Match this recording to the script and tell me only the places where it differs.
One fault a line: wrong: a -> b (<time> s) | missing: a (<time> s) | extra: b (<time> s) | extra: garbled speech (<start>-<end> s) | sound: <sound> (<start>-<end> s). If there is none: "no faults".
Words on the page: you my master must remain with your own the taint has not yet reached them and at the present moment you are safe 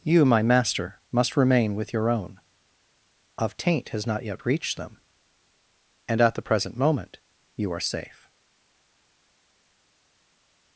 wrong: the -> of (3.4 s)